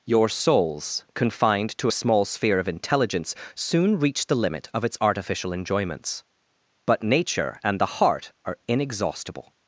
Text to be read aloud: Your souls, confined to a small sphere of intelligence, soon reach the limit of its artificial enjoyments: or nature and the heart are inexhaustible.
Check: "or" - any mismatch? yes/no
yes